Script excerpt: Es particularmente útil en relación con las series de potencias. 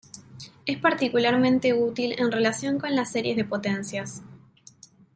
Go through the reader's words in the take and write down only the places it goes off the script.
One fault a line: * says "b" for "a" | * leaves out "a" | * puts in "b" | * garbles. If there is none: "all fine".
all fine